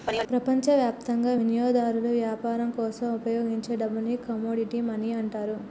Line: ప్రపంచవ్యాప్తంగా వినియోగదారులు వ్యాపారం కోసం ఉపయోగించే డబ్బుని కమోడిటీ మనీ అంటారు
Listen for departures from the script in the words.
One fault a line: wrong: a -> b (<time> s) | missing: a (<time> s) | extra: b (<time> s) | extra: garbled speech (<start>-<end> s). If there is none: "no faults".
no faults